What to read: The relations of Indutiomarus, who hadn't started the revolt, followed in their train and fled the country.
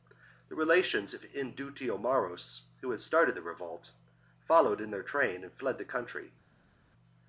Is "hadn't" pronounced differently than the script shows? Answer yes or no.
yes